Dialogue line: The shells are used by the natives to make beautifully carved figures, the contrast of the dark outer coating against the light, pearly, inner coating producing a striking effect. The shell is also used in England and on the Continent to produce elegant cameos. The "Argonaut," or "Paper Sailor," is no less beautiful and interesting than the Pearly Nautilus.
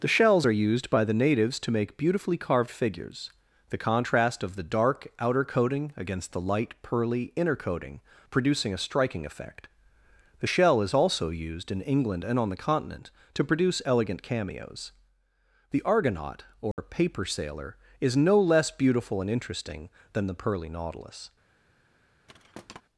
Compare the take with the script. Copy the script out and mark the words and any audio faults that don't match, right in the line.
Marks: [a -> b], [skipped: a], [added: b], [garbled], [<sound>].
The shells are used by the natives to make beautifully carved figures, the contrast of the dark outer coating against the light, pearly, inner coating producing a striking effect. The shell is also used in England and on the Continent to produce elegant cameos. The "Argonaut," or [dropout] "Paper Sailor," is no less beautiful and interesting than the Pearly Nautilus. [thud]